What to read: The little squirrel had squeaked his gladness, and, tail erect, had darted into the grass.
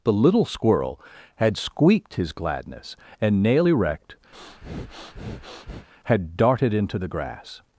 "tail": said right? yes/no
no